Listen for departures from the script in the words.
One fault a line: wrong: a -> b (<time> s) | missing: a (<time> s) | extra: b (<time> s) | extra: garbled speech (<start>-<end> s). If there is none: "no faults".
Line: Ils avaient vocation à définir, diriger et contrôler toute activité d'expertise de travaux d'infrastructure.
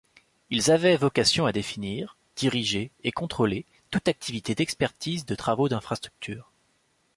no faults